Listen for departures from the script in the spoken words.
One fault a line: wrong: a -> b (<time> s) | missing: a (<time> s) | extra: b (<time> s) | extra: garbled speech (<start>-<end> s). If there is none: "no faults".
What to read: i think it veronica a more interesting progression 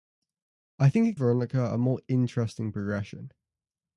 no faults